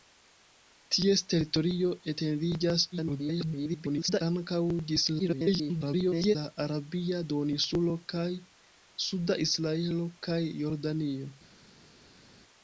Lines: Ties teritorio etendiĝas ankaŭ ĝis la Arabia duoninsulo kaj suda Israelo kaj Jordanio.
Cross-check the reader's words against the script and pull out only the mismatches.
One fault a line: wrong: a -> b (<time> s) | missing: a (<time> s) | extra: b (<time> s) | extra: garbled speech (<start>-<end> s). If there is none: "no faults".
extra: garbled speech (2.9-4.2 s)
extra: garbled speech (5.2-6.4 s)